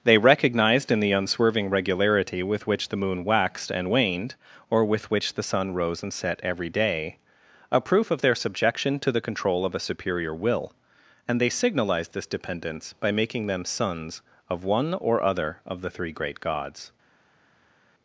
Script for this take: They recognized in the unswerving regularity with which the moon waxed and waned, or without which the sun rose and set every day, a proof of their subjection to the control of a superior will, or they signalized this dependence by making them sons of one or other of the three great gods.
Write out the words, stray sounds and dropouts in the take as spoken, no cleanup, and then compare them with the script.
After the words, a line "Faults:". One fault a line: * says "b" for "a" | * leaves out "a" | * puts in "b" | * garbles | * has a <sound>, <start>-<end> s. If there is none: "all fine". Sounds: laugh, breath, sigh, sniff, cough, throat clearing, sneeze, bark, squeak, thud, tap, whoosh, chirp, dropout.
They recognized in the unswerving regularity with which the moon waxed and waned, or with which the sun rose and set every day, a proof of their subjection to the control of a superior will, and they signalized this dependence by making them sons of one or other of the three great gods.
Faults:
* says "with" for "without"
* says "and" for "or"